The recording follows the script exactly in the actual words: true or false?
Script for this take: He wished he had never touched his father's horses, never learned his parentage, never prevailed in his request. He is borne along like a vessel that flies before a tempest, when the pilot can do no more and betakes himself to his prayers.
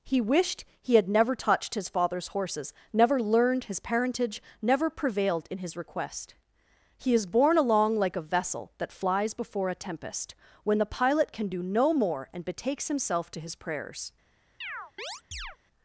true